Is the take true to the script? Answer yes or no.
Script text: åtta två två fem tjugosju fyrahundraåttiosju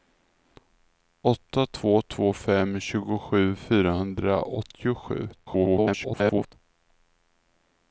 no